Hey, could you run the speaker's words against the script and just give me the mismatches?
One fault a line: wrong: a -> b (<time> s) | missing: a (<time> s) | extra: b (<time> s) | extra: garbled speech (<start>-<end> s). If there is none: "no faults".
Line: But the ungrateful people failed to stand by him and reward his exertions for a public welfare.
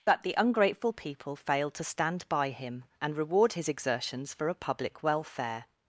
no faults